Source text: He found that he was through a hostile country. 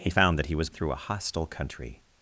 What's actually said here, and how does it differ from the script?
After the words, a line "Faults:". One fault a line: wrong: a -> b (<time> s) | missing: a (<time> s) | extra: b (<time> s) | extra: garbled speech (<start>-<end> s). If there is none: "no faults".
He found that he was through a hostile country.
Faults:
no faults